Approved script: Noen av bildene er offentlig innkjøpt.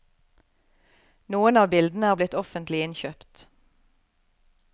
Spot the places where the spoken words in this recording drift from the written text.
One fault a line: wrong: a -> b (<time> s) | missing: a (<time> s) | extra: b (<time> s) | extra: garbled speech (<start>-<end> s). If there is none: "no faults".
extra: blitt (2.2 s)